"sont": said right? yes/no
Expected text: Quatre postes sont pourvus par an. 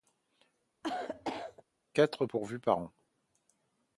no